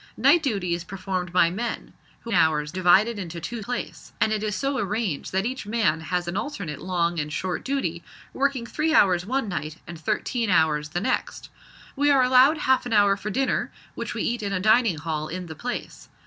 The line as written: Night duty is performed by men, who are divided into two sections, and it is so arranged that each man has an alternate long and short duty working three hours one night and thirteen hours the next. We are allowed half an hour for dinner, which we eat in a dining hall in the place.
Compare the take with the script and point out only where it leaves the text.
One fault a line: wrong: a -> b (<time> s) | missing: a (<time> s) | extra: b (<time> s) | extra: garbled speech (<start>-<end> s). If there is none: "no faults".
wrong: are -> hours (2.3 s)
wrong: sections -> place (3.6 s)